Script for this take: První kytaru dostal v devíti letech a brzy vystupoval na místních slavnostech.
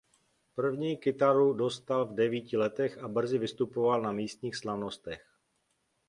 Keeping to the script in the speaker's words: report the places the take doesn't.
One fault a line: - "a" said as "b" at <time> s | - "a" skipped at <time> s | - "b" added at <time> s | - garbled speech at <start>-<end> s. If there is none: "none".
none